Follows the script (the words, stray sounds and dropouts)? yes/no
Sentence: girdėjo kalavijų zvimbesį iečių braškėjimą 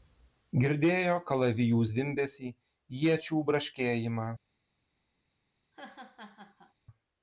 no